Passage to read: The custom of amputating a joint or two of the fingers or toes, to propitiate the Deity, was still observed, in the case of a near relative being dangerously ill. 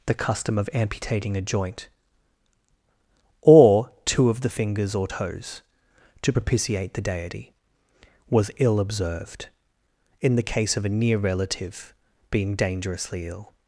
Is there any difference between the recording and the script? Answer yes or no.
yes